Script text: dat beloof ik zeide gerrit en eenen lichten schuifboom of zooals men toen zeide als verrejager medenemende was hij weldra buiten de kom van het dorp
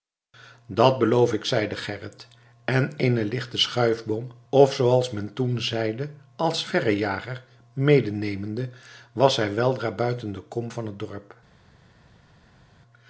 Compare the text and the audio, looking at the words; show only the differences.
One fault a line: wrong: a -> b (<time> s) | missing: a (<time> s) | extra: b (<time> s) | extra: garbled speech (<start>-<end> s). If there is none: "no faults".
no faults